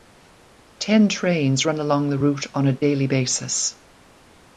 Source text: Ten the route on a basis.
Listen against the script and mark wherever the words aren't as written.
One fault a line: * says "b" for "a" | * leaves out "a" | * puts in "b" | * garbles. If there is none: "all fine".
* puts in "trains run along"
* puts in "daily"